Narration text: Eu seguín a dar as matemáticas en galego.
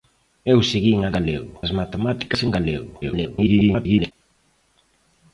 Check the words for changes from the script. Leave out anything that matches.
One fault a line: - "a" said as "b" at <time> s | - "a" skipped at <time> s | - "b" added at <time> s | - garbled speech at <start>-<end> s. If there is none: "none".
- "dar" said as "galego" at 1.2 s
- garbled speech at 3.0-4.1 s